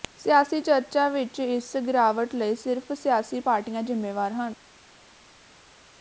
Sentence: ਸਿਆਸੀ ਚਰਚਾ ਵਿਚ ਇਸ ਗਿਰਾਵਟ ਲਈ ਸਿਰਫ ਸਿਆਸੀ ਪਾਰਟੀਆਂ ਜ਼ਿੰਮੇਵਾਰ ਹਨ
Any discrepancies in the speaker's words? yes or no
no